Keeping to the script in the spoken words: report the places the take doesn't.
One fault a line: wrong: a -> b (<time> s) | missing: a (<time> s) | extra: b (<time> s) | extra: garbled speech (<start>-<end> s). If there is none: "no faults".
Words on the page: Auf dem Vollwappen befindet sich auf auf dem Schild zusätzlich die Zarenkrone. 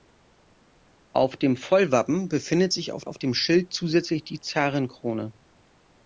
no faults